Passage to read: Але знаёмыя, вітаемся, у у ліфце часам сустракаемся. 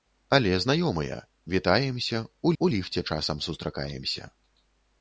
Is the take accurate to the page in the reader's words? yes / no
yes